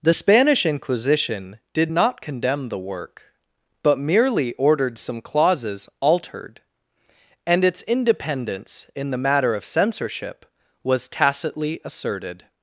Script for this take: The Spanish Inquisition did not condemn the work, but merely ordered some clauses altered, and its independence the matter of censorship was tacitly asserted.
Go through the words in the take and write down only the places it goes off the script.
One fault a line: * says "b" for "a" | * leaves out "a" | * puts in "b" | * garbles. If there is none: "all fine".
* puts in "in"